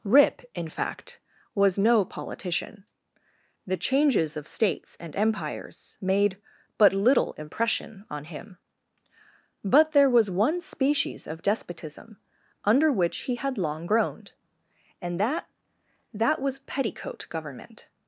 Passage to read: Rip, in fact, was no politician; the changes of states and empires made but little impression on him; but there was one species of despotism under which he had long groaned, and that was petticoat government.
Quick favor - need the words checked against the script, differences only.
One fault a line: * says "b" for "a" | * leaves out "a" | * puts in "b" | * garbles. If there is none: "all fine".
* puts in "that"